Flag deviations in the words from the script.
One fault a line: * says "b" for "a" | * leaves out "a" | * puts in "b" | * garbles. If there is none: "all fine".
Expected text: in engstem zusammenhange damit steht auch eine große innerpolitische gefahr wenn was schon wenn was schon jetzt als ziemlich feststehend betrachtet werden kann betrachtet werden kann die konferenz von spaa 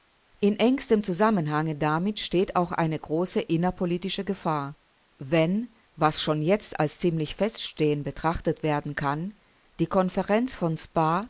* leaves out "wenn was schon"
* leaves out "betrachtet werden kann"